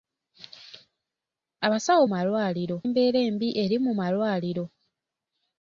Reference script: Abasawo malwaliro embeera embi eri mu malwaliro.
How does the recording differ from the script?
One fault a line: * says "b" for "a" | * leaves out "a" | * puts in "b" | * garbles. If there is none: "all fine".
all fine